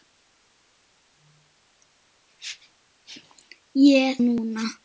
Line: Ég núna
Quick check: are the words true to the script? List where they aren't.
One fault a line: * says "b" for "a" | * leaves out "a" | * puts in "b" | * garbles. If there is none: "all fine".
all fine